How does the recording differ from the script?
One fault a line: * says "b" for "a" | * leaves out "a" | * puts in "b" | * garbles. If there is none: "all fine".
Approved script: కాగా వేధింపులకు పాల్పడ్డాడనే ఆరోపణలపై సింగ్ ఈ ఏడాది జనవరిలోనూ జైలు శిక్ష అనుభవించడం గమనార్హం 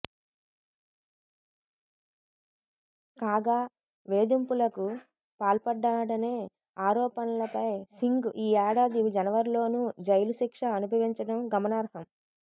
all fine